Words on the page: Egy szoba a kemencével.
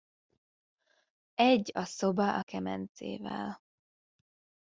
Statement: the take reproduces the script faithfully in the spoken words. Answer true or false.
false